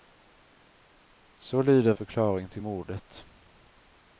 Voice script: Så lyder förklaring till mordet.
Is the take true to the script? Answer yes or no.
yes